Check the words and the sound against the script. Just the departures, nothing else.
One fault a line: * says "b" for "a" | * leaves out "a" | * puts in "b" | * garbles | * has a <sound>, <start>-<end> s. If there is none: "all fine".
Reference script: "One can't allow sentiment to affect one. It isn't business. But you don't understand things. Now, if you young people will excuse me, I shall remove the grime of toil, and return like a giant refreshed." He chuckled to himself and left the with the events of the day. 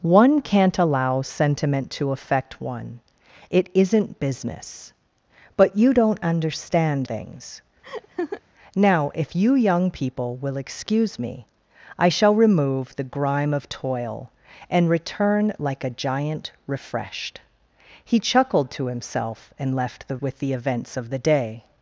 * has a laugh, 7.8-8.4 s